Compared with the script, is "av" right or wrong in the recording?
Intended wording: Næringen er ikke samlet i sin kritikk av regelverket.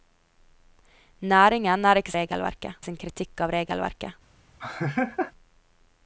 right